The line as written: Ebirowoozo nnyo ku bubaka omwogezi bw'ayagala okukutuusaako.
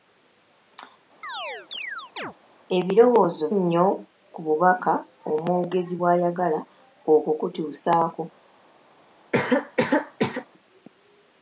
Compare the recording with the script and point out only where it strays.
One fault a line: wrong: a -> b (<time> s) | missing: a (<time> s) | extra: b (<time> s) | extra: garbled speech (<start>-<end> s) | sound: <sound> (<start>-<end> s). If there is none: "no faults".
sound: chirp (1.2-2.3 s)
sound: cough (9.3-10.5 s)